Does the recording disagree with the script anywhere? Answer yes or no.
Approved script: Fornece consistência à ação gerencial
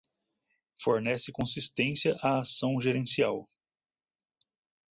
no